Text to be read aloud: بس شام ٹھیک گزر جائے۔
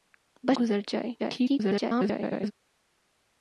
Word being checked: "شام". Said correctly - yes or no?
no